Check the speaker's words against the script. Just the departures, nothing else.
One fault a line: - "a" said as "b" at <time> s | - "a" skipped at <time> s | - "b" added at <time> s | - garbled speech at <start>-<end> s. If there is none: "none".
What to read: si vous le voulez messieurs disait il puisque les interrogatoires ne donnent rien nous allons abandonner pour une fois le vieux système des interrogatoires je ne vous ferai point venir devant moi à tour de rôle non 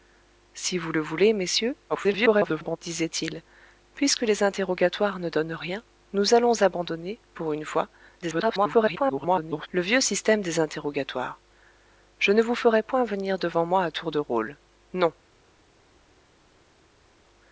- garbled speech at 1.9-2.8 s
- garbled speech at 8.2-9.7 s